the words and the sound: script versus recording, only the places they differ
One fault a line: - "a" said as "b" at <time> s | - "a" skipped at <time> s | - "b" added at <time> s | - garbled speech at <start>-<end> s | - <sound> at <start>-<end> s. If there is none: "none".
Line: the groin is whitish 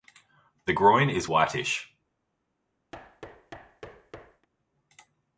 - thud at 2.9-4.5 s